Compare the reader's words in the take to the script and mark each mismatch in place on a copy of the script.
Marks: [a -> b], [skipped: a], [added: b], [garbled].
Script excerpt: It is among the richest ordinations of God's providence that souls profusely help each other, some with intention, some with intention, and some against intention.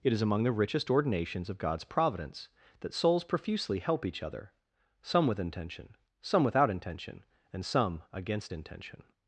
It is among the richest ordinations of God's providence that souls profusely help each other, some with intention, some [with -> without] intention, and some against intention.